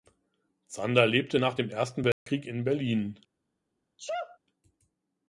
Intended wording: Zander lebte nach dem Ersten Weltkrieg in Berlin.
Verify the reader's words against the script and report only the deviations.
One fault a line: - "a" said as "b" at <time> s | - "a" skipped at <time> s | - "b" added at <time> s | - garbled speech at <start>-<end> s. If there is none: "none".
none